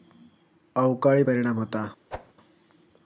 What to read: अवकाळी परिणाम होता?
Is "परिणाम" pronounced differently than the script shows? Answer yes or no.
no